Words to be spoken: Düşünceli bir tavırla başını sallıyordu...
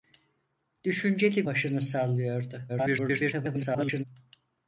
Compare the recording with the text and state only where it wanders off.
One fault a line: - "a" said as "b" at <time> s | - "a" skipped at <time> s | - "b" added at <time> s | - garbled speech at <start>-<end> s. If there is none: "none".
- "bir tavırla" skipped at 1.5 s
- garbled speech at 2.7-4.0 s